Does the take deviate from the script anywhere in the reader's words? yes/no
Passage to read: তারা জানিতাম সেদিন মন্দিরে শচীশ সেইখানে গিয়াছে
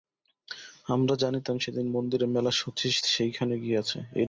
yes